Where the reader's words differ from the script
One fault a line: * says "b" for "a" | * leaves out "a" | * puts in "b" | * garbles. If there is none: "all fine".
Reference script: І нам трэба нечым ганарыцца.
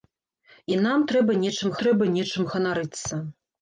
* puts in "трэба нечым"